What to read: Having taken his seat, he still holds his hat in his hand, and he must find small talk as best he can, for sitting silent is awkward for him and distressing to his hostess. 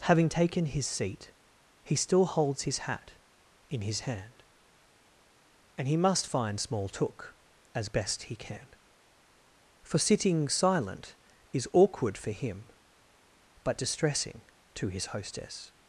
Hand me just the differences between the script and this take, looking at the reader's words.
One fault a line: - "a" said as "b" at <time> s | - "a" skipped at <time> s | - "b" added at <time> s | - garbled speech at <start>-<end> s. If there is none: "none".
- "talk" said as "took" at 6.9 s
- "and" said as "but" at 13.6 s